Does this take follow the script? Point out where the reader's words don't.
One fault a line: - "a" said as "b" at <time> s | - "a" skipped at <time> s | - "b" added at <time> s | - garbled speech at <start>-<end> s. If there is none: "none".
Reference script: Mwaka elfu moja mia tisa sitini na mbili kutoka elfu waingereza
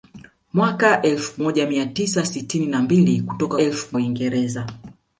none